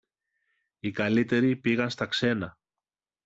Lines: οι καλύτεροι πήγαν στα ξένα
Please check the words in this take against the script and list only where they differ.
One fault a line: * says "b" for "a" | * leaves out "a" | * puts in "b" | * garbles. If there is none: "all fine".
all fine